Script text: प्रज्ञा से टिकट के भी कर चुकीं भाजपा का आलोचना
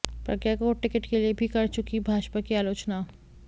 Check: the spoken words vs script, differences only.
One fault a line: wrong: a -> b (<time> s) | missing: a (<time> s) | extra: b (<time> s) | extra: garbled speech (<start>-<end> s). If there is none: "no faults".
wrong: से -> को (0.6 s)
extra: लिए (1.2 s)
wrong: का -> की (2.4 s)